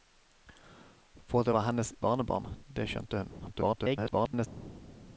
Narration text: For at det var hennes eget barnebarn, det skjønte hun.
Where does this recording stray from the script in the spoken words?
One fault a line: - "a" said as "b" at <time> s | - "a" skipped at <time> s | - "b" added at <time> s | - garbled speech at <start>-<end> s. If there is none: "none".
- "eget" skipped at 1.9 s
- garbled speech at 3.4-4.5 s